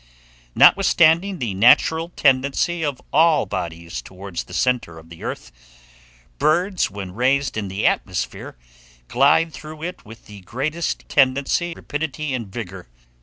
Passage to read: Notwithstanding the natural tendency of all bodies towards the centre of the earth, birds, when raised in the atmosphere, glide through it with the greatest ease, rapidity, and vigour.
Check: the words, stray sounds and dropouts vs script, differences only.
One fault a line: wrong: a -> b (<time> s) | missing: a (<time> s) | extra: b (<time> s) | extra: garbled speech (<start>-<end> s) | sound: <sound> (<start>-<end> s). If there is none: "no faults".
wrong: ease -> tendency (11.1 s)